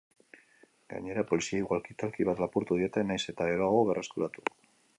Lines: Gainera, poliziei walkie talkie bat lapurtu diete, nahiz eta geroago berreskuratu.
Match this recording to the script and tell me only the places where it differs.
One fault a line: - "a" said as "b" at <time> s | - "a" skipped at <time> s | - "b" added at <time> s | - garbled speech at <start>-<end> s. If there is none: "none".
none